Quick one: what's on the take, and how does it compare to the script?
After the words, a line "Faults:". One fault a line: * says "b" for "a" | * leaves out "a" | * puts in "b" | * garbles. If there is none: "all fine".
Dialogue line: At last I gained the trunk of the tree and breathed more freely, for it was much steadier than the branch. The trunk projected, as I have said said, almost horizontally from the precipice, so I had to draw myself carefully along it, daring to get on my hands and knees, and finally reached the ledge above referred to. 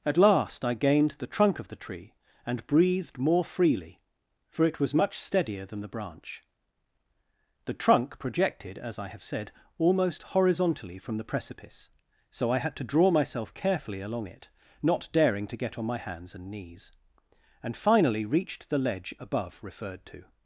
At last I gained the trunk of the tree and breathed more freely, for it was much steadier than the branch. The trunk projected, as I have said, almost horizontally from the precipice, so I had to draw myself carefully along it, not daring to get on my hands and knees, and finally reached the ledge above referred to.
Faults:
* leaves out "said"
* puts in "not"